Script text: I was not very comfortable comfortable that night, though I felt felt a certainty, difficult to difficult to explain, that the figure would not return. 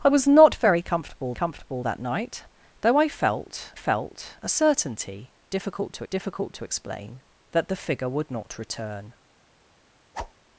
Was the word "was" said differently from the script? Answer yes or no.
no